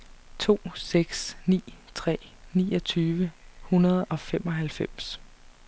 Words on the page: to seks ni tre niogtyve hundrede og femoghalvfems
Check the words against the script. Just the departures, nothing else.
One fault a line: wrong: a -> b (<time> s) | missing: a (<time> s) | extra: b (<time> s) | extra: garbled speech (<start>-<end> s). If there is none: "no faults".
no faults